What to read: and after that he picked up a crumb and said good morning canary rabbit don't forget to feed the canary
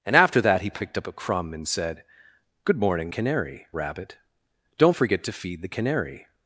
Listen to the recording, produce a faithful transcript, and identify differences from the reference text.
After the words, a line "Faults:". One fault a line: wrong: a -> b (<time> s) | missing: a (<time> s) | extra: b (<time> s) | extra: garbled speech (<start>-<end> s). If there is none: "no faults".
and after that he picked up a crumb and said good morning canary rabbit don't forget to feed the canary
Faults:
no faults